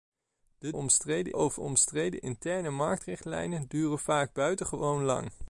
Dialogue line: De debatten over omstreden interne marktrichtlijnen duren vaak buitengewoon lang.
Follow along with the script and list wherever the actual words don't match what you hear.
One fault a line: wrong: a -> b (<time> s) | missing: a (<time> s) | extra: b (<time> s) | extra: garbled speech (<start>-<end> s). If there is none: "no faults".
wrong: debatten -> omstreden (0.7 s)